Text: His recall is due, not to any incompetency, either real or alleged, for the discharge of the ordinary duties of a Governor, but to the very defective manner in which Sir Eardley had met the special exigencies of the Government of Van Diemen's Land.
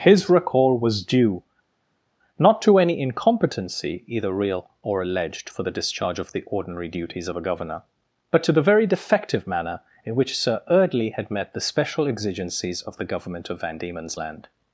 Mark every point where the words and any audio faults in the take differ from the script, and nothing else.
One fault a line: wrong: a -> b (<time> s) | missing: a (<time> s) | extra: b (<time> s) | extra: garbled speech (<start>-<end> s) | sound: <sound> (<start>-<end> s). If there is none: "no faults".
wrong: is -> was (0.8 s)